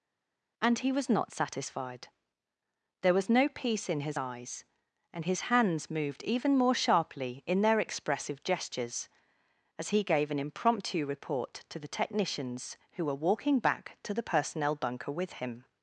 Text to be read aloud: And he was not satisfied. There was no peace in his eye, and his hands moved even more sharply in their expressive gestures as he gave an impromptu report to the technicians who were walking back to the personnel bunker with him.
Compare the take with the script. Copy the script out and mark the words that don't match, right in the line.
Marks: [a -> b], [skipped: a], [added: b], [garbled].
And he was not satisfied. There was no peace in his [eye, -> eyes] and his hands moved even more sharply in their expressive gestures as he gave an impromptu report to the technicians who were walking back to the personnel bunker with him.